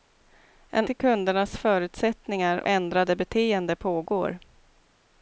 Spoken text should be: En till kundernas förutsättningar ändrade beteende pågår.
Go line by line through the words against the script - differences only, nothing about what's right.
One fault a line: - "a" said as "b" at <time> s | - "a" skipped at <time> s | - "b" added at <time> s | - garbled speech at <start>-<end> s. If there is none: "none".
none